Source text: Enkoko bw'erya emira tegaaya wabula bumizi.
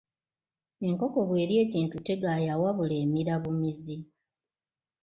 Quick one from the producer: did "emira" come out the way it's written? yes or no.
no